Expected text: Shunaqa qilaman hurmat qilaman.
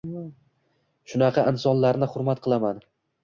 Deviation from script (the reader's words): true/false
true